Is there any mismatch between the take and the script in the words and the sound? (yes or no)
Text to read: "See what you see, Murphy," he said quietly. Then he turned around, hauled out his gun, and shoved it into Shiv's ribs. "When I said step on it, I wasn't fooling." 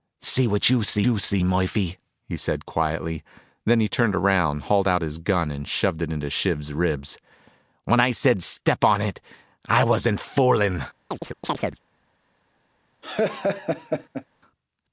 yes